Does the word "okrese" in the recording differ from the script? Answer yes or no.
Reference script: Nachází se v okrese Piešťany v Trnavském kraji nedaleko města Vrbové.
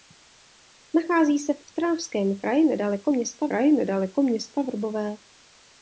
yes